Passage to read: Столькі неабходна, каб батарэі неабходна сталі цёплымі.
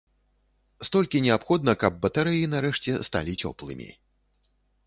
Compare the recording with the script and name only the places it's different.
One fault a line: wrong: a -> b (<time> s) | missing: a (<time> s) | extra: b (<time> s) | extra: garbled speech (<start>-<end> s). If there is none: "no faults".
wrong: неабходна -> нарэшце (2.6 s)